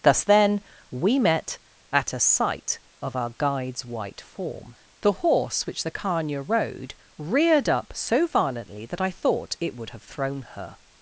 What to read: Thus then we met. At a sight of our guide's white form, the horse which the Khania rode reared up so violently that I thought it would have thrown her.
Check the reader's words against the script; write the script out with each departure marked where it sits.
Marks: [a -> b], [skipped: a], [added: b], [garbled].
Thus then we met. At a sight of our guide's white form, the horse which the Khania rode reared up so violently that I thought it would have thrown her.